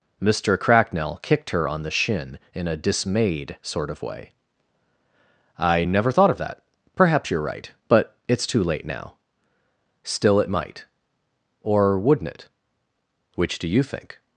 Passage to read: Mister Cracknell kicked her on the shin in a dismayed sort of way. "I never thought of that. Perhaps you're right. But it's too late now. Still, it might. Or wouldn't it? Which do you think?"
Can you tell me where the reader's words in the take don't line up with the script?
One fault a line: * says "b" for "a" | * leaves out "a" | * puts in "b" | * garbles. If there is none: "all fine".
all fine